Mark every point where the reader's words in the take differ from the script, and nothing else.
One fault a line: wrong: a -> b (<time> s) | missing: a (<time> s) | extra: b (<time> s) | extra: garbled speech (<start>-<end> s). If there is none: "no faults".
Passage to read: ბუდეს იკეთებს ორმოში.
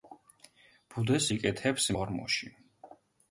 no faults